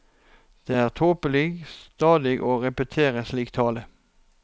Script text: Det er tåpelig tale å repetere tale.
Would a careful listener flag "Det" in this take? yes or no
no